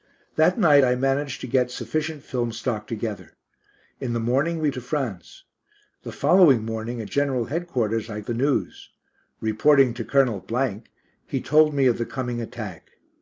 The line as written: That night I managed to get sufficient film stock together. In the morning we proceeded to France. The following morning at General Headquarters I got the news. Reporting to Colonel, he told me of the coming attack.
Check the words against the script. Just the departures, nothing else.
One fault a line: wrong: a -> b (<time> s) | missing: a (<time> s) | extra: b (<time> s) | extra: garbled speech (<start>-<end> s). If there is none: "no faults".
missing: proceeded (4.7 s)
missing: got (8.2 s)